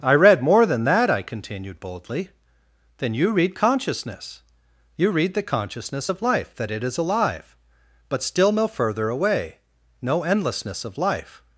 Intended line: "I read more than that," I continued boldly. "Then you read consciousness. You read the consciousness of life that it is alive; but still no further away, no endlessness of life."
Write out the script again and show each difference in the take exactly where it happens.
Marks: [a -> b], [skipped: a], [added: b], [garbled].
"I read more than that," I continued boldly. "Then you read consciousness. You read the consciousness of life that it is alive; but still no further away, no endlessness of life."